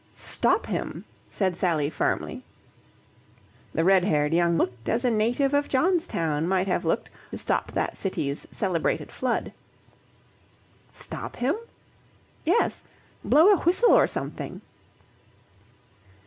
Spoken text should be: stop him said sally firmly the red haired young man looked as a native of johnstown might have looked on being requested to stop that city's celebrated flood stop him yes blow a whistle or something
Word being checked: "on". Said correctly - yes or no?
no